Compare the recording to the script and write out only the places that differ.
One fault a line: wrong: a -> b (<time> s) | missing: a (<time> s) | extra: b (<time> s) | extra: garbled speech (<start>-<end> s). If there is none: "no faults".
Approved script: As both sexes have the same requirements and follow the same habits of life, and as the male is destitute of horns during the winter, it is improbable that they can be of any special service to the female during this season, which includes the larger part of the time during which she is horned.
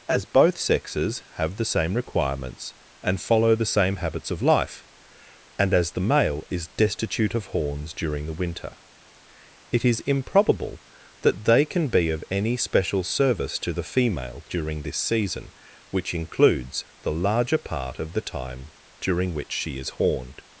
no faults